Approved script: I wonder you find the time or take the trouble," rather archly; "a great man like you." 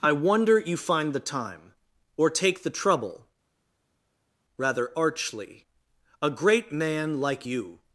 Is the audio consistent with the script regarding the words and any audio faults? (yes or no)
yes